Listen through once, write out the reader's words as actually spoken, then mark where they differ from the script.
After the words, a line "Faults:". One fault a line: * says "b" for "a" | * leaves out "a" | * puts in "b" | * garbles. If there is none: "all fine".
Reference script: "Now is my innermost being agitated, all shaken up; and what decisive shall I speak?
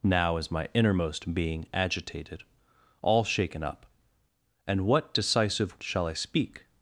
"Now is my innermost being agitated, all shaken up; and what decisive shall I speak?
Faults:
all fine